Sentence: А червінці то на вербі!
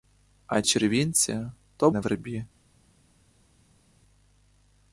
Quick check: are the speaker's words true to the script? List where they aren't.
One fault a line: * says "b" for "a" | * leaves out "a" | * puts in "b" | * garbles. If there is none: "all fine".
all fine